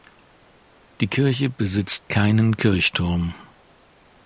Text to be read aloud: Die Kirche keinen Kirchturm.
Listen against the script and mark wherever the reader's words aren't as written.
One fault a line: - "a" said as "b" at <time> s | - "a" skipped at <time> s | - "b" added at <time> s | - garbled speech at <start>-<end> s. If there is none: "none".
- "besitzt" added at 1.5 s